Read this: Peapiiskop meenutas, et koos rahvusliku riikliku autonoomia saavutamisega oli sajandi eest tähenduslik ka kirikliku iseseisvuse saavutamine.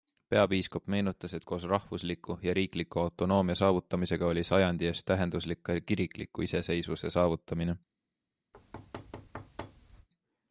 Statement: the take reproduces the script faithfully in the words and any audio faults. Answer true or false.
false